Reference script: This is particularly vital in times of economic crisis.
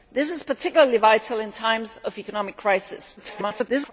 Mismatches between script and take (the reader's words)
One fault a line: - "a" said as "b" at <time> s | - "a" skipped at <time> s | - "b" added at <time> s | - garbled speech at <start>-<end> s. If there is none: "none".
- garbled speech at 3.2-3.9 s